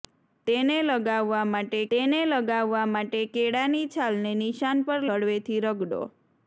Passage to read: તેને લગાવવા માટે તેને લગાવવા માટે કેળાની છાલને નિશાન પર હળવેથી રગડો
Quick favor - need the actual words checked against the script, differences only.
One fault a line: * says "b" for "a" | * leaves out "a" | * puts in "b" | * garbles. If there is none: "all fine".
all fine